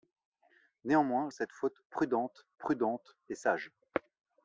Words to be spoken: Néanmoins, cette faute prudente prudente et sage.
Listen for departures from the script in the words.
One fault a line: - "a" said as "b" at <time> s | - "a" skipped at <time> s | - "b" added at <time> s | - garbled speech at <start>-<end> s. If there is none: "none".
none